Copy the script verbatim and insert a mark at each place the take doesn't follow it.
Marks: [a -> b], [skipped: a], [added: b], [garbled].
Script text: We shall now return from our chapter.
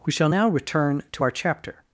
We shall now return [from -> to] our chapter.